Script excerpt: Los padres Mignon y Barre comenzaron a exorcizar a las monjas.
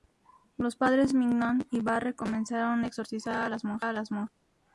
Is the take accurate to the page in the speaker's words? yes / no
yes